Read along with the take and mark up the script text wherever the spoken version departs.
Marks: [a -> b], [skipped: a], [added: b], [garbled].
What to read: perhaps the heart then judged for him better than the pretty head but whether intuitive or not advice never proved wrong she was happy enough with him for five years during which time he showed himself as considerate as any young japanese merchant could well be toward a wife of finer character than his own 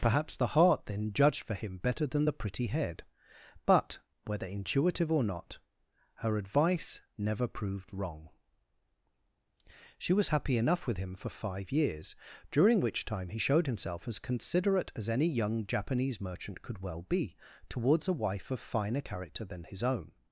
perhaps the heart then judged for him better than the pretty head but whether intuitive or not [added: her] advice never proved wrong she was happy enough with him for five years during which time he showed himself as considerate as any young japanese merchant could well be [toward -> towards] a wife of finer character than his own